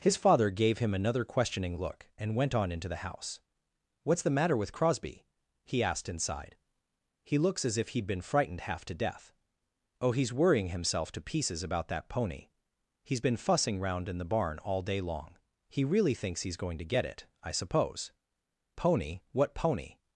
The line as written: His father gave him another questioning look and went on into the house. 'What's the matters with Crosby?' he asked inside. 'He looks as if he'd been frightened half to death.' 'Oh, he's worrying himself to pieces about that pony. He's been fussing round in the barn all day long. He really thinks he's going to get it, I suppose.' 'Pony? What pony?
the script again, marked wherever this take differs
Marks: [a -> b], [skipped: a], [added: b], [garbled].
His father gave him another questioning look and went on into the house. 'What's the [matters -> matter] with Crosby?' he asked inside. 'He looks as if he'd been frightened half to death.' 'Oh, he's worrying himself to pieces about that pony. He's been fussing round in the barn all day long. He really thinks he's going to get it, I suppose.' 'Pony? What pony?